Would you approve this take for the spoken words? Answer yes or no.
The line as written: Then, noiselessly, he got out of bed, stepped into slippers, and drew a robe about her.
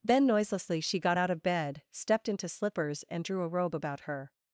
no